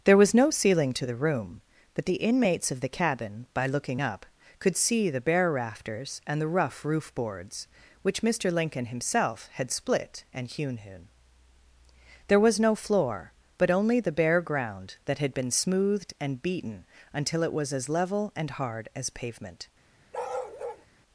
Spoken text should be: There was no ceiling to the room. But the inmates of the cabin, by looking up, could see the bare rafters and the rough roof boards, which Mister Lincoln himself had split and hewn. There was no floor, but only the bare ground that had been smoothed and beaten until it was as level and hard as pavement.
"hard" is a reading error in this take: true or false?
false